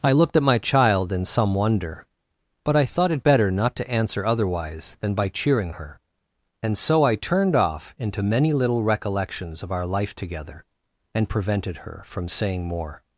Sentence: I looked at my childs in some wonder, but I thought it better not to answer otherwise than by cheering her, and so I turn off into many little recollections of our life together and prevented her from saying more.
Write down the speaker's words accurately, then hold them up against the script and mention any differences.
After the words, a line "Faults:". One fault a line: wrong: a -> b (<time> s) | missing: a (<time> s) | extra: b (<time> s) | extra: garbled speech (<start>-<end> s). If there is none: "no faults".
I looked at my child in some wonder, but I thought it better not to answer otherwise than by cheering her, and so I turned off into many little recollections of our life together and prevented her from saying more.
Faults:
wrong: childs -> child (0.6 s)
wrong: turn -> turned (7.1 s)